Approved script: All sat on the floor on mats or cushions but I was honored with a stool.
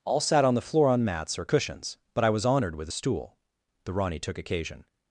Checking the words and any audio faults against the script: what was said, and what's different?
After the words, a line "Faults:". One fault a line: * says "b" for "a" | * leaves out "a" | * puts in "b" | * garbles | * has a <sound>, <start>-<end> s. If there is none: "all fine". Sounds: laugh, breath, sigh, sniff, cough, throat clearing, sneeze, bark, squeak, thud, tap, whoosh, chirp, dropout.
All sat on the floor on mats or cushions but I was honored with a stool. The Rani took occasion
Faults:
* puts in "The Rani took occasion"